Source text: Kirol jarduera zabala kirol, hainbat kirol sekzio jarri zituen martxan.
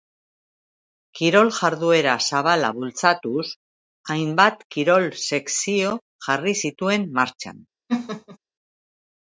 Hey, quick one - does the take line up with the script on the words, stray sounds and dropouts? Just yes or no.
no